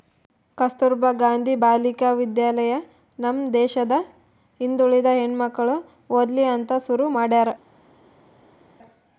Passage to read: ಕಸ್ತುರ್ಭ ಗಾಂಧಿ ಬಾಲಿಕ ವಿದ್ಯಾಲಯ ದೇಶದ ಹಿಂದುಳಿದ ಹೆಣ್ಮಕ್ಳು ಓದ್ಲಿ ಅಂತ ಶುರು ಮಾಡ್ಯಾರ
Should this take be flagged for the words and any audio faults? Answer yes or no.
yes